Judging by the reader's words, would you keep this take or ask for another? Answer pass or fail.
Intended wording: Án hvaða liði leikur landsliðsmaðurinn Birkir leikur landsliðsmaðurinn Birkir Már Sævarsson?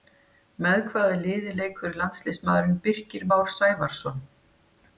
fail